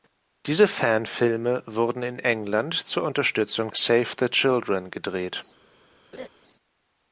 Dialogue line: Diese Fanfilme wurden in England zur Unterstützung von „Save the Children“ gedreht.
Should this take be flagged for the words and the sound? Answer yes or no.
yes